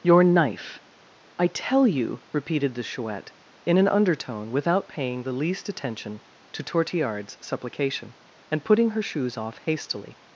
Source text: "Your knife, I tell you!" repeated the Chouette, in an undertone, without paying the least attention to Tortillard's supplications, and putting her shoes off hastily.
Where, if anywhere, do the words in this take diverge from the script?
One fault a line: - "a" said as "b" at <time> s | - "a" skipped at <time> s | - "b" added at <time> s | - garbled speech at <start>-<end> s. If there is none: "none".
- "supplications" said as "supplication" at 7.4 s